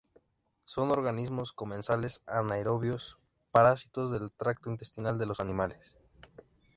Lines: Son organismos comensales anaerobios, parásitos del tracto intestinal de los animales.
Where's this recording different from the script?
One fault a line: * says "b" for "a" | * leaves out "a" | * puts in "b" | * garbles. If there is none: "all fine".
all fine